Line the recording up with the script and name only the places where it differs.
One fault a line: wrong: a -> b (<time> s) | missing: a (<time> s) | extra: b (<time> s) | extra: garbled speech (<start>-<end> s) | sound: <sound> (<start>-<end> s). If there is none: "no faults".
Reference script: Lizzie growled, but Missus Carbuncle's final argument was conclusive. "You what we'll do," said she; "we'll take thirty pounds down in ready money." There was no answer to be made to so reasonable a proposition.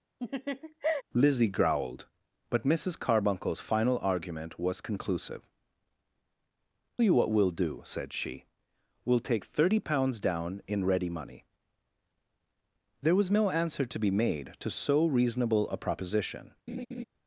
sound: laugh (0.2-1.0 s)
sound: laugh (16.7-17.0 s)